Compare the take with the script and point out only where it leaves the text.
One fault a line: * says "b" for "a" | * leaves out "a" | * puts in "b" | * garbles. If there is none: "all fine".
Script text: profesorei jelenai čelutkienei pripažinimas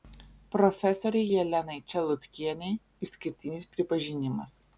* puts in "išskirtinis"